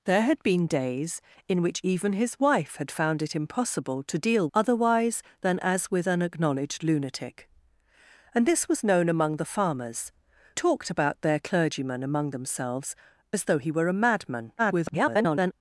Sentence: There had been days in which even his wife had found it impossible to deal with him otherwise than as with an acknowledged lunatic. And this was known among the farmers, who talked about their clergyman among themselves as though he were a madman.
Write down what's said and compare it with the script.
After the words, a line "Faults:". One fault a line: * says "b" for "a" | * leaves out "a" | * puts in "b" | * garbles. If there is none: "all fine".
There had been days in which even his wife had found it impossible to deal otherwise than as with an acknowledged lunatic. And this was known among the farmers, talked about their clergyman among themselves as though he were a madman. [garbled]
Faults:
* leaves out "with him"
* leaves out "who"
* garbles